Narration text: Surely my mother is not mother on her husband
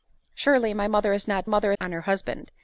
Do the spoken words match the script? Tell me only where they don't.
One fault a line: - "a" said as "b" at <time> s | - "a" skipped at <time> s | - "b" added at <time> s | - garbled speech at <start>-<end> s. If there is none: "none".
none